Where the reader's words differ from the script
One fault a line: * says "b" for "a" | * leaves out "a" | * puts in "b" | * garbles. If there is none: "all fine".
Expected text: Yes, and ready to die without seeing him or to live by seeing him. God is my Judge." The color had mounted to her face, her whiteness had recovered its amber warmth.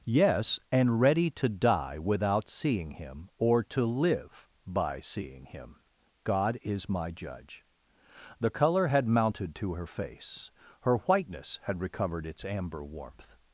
all fine